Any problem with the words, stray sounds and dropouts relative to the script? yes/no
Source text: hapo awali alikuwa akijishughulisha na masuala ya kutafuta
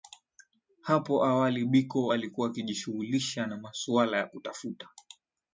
yes